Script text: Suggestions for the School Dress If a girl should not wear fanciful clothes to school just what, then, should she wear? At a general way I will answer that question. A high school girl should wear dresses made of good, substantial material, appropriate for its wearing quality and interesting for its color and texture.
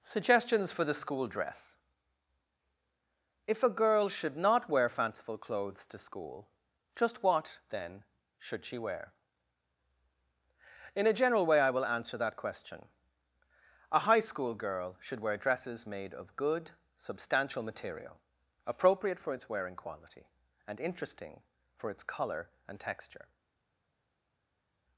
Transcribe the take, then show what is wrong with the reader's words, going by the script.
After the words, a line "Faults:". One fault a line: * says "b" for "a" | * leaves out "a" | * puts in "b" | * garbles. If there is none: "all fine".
Suggestions for the School Dress If a girl should not wear fanciful clothes to school just what, then, should she wear? In a general way I will answer that question. A high school girl should wear dresses made of good, substantial material, appropriate for its wearing quality and interesting for its color and texture.
Faults:
* says "In" for "At"